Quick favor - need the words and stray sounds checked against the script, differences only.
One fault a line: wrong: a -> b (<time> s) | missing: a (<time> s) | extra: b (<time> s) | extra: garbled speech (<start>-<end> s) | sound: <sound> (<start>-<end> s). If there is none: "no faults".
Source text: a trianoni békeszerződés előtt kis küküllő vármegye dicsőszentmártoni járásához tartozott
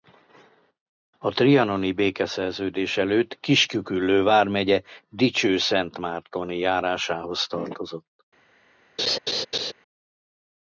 sound: laugh (9.0-9.7 s)